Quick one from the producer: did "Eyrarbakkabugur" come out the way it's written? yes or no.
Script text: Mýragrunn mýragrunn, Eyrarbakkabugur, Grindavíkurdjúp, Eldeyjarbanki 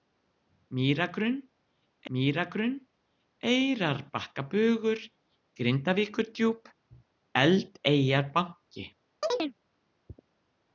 yes